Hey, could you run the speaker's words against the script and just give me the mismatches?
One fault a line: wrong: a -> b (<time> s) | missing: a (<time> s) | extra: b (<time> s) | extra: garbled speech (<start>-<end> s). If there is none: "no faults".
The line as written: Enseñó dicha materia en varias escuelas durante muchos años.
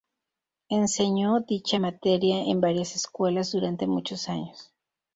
no faults